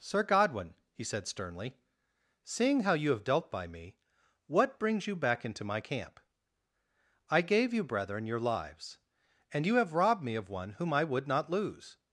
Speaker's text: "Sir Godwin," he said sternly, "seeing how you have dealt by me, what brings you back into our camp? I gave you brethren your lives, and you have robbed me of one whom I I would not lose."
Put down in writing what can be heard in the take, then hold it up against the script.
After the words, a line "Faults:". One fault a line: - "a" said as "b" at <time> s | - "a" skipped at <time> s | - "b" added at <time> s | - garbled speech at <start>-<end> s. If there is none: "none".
"Sir Godwin," he said sternly, "seeing how you have dealt by me, what brings you back into my camp? I gave you brethren your lives, and you have robbed me of one whom I would not lose."
Faults:
- "our" said as "my" at 5.6 s
- "I" skipped at 11.0 s